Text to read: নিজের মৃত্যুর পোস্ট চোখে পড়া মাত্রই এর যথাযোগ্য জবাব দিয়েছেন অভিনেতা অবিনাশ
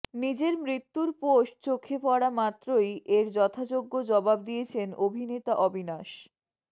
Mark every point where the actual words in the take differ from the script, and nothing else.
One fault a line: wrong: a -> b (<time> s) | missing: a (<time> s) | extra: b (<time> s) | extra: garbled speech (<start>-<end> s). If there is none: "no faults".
no faults